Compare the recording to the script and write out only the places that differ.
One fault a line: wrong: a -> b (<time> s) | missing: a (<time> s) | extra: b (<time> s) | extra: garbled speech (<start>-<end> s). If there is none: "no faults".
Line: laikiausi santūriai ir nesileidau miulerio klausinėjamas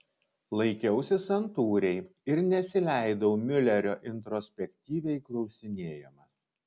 extra: introspektyviai (4.1 s)